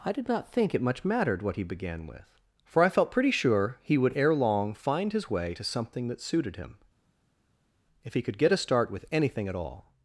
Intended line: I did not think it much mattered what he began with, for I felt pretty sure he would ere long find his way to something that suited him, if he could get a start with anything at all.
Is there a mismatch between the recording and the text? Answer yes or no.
no